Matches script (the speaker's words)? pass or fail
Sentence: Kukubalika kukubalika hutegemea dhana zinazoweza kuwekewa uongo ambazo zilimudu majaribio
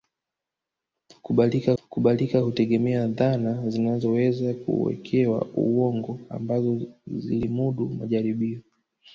pass